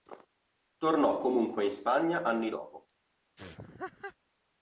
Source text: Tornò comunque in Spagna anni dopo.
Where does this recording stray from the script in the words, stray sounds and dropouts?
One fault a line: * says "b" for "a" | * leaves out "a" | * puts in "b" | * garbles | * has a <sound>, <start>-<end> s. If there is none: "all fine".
* has a laugh, 3.4-4.2 s